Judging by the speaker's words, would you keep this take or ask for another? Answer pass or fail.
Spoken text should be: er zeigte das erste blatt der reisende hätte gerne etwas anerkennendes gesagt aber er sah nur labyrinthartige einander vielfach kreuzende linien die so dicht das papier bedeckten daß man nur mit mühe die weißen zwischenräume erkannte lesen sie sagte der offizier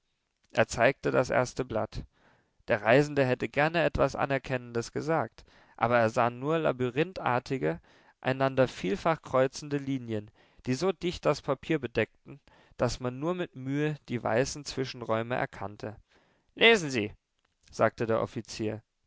pass